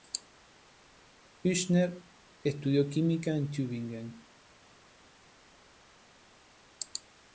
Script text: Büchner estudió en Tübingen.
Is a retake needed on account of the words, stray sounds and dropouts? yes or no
yes